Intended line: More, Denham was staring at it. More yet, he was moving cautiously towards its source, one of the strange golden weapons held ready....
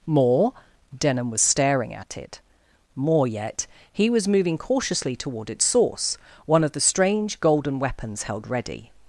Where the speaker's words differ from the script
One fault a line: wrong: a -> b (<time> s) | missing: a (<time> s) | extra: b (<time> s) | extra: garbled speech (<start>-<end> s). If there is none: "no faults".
wrong: towards -> toward (5.2 s)